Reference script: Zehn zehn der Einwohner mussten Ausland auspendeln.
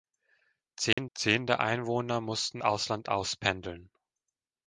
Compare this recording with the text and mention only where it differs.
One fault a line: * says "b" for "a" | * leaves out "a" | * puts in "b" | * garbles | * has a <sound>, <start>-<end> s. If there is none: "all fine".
* has a dropout, 0.9-1.0 s